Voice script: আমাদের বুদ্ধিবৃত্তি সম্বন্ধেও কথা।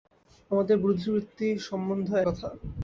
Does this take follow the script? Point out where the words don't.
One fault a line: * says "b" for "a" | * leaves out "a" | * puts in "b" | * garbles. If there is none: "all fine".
all fine